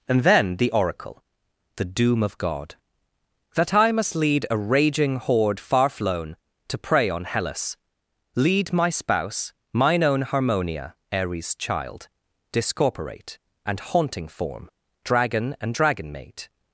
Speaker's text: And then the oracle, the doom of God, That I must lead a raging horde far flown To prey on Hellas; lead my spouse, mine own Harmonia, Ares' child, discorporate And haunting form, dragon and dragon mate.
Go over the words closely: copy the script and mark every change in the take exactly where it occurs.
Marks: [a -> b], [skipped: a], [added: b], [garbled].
And then the oracle, the doom of God, That I must lead a raging horde far flown To prey on Hellas; lead my spouse, mine own Harmonia, Ares' child, discorporate And haunting form, dragon and dragon mate.